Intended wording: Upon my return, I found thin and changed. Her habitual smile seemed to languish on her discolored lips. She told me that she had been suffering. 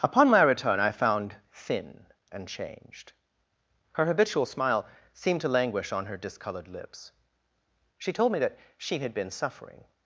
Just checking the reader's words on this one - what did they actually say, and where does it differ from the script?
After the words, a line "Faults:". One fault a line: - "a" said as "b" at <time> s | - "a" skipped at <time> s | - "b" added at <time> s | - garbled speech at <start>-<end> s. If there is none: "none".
Upon my return, I found thin and changed. Her habitual smile seemed to languish on her discolored lips. She told me that she had been suffering.
Faults:
none